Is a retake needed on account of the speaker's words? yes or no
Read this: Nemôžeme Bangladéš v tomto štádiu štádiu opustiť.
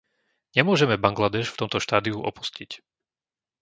yes